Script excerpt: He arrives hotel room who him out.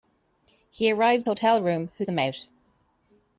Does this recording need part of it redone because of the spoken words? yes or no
no